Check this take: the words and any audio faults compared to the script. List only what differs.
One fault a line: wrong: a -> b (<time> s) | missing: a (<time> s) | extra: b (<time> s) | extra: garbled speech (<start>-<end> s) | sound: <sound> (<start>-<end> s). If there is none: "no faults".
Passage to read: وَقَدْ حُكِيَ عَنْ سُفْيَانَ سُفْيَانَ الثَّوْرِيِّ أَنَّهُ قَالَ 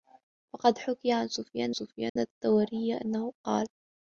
sound: dropout (2.1-2.2 s)